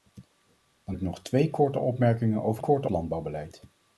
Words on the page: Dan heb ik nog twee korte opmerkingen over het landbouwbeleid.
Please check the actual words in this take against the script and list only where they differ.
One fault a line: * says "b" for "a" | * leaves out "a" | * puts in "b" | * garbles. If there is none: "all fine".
* leaves out "heb"
* says "korte" for "het"